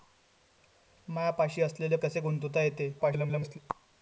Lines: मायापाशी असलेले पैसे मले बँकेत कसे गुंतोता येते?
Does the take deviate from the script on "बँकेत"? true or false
true